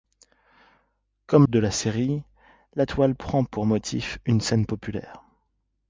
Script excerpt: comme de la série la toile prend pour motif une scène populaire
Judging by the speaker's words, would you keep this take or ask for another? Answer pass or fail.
pass